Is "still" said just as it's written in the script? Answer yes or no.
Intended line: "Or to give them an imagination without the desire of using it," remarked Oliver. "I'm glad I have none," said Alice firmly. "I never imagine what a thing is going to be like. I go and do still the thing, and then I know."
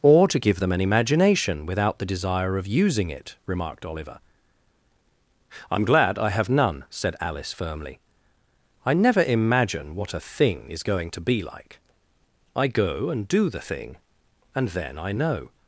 no